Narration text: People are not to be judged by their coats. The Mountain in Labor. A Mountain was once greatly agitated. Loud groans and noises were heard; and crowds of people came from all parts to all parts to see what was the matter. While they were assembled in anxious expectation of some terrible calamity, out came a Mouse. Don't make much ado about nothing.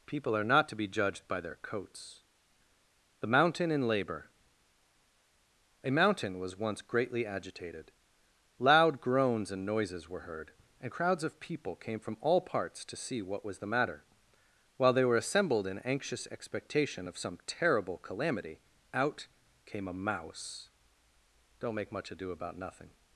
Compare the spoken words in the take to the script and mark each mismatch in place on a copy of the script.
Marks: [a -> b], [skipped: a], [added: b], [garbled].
People are not to be judged by their coats. The Mountain in Labor. A Mountain was once greatly agitated. Loud groans and noises were heard; and crowds of people came from all parts to [skipped: all parts to] see what was the matter. While they were assembled in anxious expectation of some terrible calamity, out came a Mouse. Don't make much ado about nothing.